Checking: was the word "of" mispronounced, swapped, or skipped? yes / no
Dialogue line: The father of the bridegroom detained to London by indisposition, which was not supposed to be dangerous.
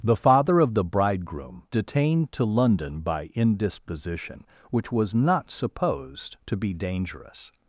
no